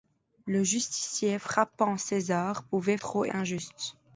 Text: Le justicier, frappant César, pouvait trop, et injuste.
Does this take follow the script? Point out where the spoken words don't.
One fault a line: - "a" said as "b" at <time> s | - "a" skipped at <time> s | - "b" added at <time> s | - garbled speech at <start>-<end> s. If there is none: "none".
none